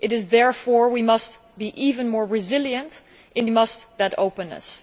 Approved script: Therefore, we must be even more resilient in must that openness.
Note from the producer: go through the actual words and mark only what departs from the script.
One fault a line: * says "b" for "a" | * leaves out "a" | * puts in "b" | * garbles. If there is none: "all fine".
all fine